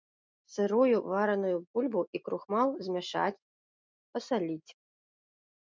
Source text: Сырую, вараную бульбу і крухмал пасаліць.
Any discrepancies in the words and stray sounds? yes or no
yes